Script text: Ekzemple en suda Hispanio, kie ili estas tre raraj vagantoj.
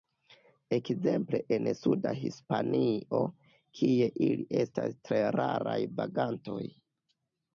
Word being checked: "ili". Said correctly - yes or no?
yes